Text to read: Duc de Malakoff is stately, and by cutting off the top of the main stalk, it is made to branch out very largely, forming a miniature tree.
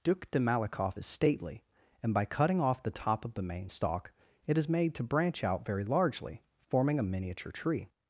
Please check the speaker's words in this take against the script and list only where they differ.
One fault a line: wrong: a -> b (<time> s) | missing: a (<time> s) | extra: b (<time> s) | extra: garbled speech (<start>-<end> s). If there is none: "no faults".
no faults